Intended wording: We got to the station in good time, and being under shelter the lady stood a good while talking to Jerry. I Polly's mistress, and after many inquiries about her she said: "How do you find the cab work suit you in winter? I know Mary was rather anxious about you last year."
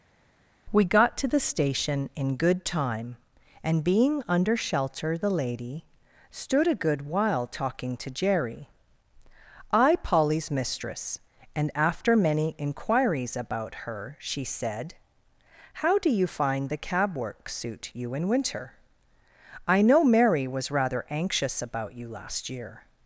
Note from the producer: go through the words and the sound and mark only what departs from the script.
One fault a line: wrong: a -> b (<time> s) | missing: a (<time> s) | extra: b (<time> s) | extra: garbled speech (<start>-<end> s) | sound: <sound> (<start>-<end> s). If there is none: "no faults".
no faults